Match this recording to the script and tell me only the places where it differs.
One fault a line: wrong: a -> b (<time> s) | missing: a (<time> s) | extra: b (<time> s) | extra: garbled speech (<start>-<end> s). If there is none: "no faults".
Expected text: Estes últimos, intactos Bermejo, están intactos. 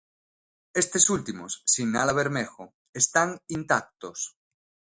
wrong: intactos -> sinala (1.7 s)